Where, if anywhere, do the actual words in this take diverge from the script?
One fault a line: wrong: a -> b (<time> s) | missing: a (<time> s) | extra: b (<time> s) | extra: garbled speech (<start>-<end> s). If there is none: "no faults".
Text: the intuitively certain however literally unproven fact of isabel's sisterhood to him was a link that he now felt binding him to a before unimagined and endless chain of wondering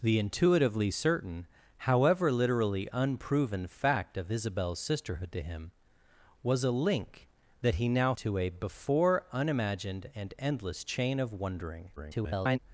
missing: felt binding him (8.1 s)
extra: garbled speech (12.0-12.6 s)